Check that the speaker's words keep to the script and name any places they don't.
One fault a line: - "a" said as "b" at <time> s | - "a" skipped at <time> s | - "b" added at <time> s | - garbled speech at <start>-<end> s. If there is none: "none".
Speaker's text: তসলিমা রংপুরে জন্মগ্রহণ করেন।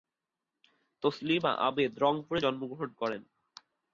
- "আবেদ" added at 1.7 s